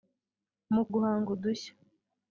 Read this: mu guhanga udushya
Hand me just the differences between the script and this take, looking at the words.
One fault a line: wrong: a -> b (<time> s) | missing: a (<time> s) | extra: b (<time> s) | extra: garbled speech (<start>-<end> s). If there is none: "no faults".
no faults